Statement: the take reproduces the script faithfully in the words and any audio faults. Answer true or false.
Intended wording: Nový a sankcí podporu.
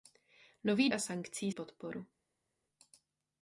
true